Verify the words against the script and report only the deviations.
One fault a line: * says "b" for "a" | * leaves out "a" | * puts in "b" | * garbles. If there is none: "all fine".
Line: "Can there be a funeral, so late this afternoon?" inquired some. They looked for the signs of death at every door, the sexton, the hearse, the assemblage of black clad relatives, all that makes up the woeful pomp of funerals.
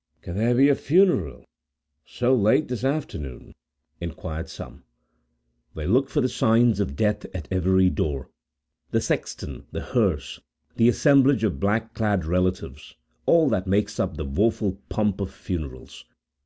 all fine